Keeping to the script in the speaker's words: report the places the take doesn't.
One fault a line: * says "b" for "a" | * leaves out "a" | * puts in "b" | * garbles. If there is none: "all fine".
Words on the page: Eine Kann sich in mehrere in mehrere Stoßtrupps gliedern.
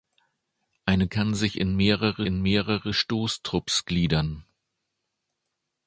all fine